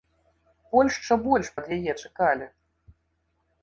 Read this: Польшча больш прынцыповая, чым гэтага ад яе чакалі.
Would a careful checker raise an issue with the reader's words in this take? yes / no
yes